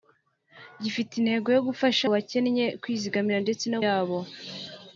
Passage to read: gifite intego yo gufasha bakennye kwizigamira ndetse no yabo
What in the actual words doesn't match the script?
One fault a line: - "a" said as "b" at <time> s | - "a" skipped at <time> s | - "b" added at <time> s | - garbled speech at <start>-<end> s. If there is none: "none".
none